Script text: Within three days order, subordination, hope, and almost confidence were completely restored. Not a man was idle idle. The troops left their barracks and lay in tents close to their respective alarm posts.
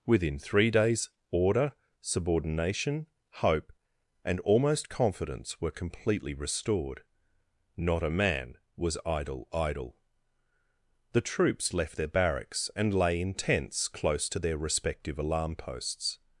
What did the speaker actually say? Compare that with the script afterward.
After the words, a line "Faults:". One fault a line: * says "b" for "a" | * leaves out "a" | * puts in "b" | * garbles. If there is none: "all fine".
Within three days order, subordination, hope, and almost confidence were completely restored. Not a man was idle idle. The troops left their barracks and lay in tents close to their respective alarm posts.
Faults:
all fine